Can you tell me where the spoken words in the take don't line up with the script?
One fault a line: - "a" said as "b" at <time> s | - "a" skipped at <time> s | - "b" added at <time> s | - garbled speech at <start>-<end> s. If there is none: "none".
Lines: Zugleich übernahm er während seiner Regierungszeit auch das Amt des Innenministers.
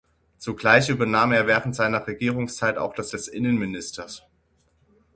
- "Amt" skipped at 3.1 s